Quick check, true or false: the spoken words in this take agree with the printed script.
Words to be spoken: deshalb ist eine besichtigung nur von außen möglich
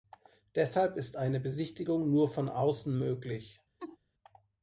true